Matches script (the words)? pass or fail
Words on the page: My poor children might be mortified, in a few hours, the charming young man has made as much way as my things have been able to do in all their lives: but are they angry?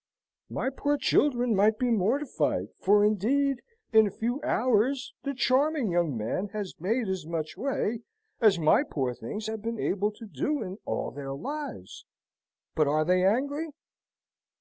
fail